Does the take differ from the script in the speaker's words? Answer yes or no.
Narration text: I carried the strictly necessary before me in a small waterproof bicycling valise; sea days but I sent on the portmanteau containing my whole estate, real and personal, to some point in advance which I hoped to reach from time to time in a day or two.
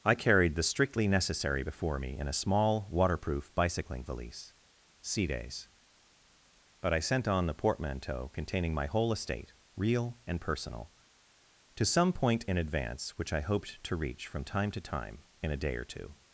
no